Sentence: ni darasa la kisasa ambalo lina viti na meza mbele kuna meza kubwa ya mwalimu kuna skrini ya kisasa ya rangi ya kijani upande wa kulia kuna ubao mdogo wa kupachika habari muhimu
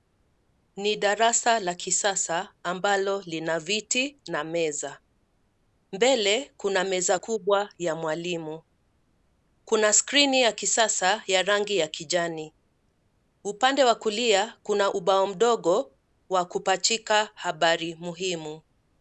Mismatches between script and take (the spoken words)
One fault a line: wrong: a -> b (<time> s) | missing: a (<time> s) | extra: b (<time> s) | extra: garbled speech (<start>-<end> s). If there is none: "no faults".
no faults